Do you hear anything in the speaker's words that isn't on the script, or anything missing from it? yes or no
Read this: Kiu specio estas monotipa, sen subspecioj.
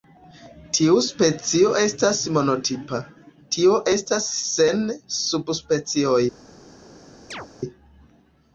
yes